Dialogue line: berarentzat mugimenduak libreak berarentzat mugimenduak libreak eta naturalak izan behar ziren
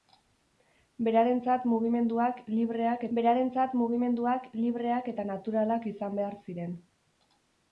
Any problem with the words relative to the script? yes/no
no